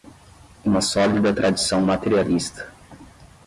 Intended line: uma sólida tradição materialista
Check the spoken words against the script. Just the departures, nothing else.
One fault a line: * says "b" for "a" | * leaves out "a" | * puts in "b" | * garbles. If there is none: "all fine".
all fine